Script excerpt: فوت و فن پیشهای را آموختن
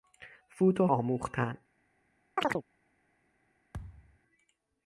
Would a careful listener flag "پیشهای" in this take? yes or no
yes